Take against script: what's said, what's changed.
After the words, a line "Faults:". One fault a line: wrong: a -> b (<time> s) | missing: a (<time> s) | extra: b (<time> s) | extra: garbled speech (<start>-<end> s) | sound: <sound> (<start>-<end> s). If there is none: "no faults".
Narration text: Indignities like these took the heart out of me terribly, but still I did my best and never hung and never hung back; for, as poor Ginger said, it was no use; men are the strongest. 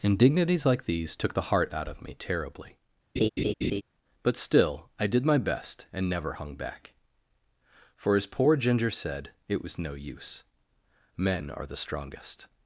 Indignities like these took the heart out of me terribly, but still I did my best and never hung back; for, as poor Ginger said, it was no use; men are the strongest.
Faults:
sound: laugh (3.2-3.8 s)
missing: and never hung (6.5 s)